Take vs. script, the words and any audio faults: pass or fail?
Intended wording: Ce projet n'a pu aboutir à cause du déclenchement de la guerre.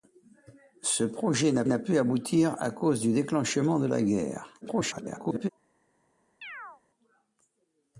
fail